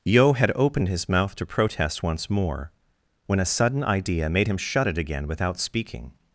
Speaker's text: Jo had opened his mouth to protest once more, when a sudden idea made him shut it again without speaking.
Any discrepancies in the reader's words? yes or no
yes